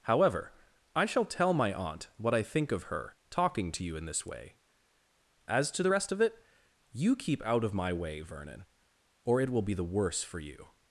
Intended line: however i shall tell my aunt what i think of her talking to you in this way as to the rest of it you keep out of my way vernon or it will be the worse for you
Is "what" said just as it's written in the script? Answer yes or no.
yes